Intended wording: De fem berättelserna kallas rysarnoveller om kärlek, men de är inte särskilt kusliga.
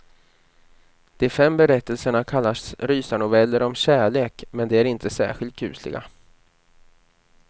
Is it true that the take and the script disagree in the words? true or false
false